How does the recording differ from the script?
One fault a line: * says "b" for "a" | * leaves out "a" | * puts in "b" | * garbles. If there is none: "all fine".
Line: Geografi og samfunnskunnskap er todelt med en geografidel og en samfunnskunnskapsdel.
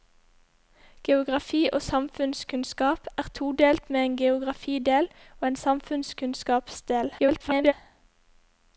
* garbles